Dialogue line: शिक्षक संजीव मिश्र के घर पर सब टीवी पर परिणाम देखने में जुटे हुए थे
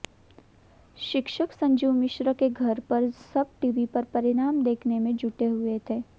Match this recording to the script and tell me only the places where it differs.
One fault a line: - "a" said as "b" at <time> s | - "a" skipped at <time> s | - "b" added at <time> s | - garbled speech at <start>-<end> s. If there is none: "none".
none